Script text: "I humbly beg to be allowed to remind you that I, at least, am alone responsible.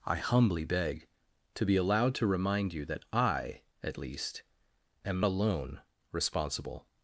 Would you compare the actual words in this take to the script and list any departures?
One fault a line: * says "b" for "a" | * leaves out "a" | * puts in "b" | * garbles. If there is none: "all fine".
all fine